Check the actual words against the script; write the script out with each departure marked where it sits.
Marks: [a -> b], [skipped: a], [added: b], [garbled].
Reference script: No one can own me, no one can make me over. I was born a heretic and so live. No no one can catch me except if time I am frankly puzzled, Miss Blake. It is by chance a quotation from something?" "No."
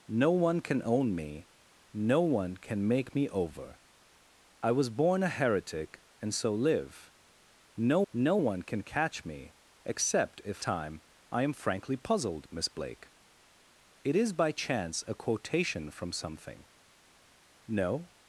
No one can own me, no one can make me over. I was born a heretic and so live. No no one can catch me except if time I am frankly puzzled, Miss Blake. It is by chance a quotation from something?" "No."